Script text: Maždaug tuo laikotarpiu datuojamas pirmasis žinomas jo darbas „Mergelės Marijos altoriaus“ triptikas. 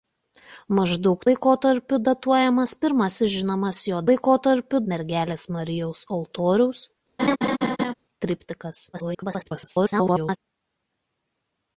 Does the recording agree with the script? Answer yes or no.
no